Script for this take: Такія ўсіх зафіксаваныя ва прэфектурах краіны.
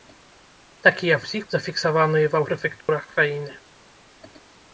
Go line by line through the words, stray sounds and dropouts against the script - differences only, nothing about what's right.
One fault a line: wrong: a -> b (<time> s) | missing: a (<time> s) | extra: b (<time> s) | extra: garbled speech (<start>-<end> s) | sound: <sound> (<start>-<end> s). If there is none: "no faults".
sound: dropout (2.8-2.9 s)